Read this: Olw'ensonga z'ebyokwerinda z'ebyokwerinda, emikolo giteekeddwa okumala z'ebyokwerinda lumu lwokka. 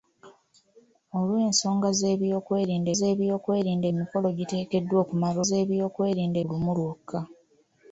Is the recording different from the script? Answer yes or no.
no